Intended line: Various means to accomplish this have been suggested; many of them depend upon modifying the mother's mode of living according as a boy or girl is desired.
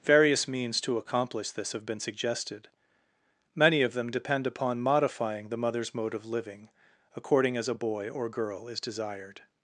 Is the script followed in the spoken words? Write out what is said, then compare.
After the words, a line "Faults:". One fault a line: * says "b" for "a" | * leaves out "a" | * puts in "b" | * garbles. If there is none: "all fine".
Various means to accomplish this have been suggested; many of them depend upon modifying the mother's mode of living according as a boy or girl is desired.
Faults:
all fine